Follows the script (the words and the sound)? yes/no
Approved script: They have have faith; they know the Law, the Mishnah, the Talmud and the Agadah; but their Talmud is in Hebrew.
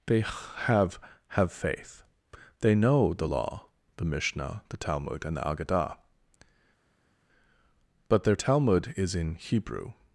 yes